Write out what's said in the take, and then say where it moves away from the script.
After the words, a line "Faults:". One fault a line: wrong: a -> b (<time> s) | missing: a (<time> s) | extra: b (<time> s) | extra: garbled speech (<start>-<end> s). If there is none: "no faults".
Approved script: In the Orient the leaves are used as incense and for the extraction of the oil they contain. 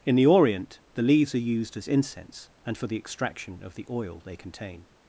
In the Orient the leaves are used as incense and for the extraction of the oil they contain.
Faults:
no faults